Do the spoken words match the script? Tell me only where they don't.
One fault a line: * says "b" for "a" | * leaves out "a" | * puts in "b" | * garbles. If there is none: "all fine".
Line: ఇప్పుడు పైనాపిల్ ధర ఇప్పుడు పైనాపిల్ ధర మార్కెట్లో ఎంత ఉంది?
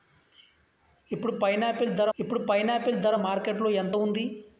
all fine